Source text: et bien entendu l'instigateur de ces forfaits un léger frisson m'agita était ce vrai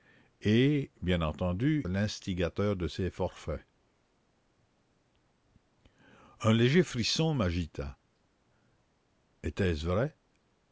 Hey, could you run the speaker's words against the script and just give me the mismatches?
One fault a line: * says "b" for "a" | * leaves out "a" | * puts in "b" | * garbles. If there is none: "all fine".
all fine